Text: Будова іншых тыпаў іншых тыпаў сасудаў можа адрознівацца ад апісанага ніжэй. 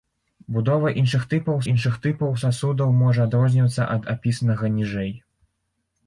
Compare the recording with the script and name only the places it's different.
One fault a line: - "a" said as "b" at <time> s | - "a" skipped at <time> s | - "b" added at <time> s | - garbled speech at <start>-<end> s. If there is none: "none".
none